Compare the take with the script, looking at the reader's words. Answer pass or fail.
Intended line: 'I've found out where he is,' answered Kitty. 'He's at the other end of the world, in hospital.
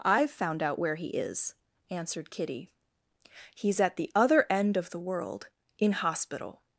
pass